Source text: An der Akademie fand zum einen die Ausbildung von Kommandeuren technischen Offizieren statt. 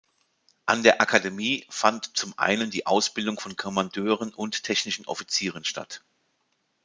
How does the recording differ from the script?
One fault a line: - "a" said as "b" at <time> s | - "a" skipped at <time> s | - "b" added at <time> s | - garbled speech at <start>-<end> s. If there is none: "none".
- "und" added at 4.3 s